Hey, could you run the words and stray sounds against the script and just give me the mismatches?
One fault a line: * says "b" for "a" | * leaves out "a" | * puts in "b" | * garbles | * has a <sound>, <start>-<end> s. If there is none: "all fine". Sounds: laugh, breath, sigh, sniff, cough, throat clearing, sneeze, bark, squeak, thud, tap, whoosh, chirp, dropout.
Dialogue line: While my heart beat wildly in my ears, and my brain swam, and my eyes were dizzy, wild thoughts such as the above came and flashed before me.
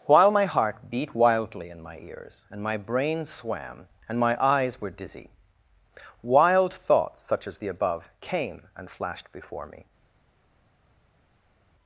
all fine